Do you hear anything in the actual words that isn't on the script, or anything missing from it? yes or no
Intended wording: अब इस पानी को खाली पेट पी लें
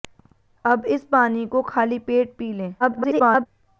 yes